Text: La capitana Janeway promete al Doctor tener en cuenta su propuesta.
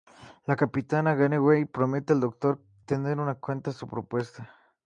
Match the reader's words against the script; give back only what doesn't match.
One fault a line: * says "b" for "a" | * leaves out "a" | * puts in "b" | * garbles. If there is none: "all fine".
all fine